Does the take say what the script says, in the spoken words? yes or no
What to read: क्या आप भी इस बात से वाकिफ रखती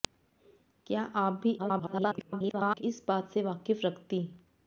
no